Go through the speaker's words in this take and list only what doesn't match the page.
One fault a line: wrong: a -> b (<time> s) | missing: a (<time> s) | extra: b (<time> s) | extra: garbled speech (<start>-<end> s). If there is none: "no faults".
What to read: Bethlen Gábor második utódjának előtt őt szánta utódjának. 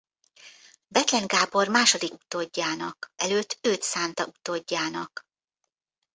no faults